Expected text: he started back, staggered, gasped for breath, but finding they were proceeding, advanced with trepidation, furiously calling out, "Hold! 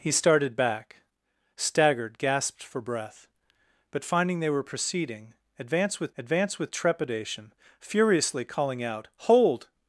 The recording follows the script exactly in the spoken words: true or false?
false